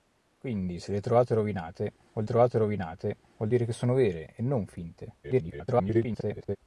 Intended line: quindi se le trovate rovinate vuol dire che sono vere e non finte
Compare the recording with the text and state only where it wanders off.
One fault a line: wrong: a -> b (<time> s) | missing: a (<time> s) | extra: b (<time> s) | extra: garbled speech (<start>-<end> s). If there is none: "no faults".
extra: trovate rovinate vuol (2.2 s)
extra: garbled speech (5.2-6.6 s)